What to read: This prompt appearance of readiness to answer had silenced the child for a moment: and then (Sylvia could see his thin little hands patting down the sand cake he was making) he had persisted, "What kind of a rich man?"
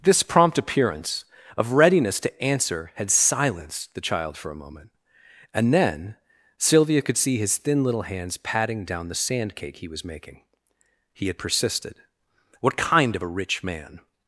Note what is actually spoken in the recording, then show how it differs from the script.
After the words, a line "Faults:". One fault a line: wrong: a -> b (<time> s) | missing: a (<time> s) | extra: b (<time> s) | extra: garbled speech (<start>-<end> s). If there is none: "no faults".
This prompt appearance of readiness to answer had silenced the child for a moment: and then (Sylvia could see his thin little hands patting down the sand cake he was making) he had persisted, "What kind of a rich man?"
Faults:
no faults